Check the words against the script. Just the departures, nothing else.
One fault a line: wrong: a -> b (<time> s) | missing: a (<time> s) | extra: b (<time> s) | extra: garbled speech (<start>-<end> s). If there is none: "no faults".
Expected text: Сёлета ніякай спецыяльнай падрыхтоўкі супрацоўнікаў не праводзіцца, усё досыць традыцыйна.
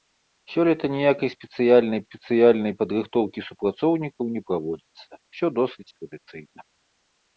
extra: спецыяльнай (2.0 s)